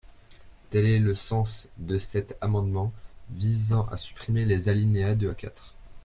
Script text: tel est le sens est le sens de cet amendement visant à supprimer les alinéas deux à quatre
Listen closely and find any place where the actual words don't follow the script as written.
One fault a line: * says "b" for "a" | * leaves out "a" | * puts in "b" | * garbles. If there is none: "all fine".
* leaves out "est le sens"